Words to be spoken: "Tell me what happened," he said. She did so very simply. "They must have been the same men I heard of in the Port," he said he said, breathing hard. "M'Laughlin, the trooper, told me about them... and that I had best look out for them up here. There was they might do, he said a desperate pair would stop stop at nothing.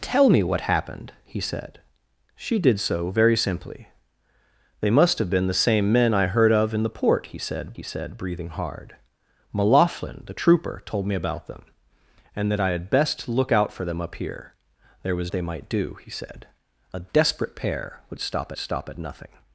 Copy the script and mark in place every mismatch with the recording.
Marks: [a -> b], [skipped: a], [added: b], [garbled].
"Tell me what happened," he said. She did so very simply. "They must have been the same men I heard of in the Port," he said he said, breathing hard. "M'Laughlin, the trooper, told me about them... and that I had best look out for them up here. There was they might do, he said a desperate pair would stop stop at nothing.